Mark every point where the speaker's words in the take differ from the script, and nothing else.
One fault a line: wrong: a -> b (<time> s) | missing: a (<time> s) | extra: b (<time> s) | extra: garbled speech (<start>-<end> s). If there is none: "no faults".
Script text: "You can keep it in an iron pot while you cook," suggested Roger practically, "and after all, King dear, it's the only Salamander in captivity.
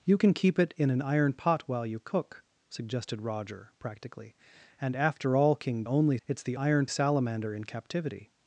wrong: dear -> only (5.8 s)
wrong: only -> iron (6.5 s)